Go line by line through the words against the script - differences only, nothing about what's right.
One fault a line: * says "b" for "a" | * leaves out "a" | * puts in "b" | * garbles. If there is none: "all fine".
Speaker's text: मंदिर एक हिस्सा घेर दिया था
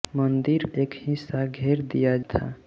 all fine